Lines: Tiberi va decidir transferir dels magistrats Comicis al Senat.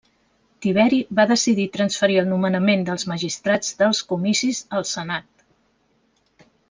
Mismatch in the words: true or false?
true